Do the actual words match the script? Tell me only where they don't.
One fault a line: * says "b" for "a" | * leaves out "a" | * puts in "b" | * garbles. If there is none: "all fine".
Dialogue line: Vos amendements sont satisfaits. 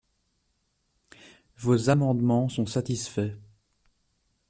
all fine